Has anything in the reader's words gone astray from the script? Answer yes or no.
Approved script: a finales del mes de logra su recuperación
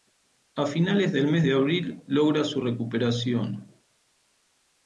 yes